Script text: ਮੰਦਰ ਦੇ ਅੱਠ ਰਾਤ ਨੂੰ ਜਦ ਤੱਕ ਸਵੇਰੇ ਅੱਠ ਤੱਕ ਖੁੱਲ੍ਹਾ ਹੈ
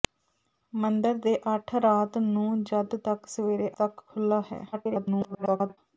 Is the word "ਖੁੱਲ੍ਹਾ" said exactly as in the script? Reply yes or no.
yes